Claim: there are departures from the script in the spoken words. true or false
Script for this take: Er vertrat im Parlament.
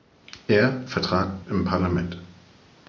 false